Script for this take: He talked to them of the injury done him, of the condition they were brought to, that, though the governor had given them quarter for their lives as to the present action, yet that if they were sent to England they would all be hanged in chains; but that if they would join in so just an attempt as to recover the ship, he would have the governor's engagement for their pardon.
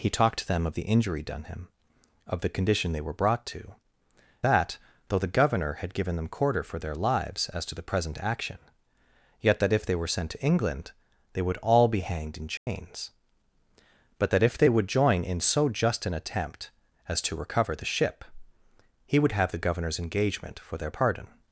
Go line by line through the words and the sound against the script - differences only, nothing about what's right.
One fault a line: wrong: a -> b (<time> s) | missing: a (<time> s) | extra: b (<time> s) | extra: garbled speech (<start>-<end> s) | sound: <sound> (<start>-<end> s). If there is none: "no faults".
sound: dropout (12.6-12.7 s)